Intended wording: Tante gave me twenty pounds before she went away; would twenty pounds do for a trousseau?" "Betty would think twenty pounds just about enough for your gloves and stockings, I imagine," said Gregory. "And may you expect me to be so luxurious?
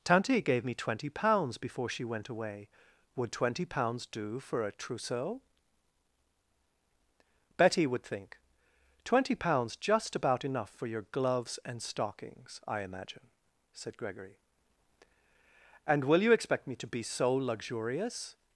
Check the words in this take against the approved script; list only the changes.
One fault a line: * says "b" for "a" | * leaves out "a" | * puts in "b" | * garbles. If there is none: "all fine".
* says "will" for "may"